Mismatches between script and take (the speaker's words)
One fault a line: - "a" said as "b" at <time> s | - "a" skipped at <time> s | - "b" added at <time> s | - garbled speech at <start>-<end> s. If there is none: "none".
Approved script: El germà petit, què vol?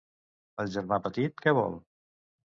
none